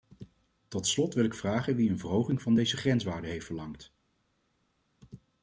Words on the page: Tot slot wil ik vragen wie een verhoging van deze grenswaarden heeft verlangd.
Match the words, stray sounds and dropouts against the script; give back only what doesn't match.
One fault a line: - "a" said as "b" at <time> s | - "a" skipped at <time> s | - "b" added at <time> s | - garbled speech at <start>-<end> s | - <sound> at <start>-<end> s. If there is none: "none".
none